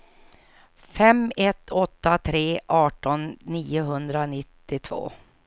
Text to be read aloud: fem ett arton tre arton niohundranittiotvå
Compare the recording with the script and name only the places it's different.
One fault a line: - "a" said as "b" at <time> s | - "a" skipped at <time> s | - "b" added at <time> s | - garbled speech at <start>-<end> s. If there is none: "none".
- "arton" said as "åtta" at 1.7 s